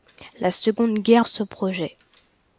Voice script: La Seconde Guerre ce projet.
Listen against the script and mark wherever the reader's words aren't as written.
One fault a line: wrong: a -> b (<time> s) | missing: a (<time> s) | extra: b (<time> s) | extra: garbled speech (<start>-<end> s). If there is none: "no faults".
no faults